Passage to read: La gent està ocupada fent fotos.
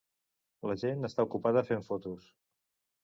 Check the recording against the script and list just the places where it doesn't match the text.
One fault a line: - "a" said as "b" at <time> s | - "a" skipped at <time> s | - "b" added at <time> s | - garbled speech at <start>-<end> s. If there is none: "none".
none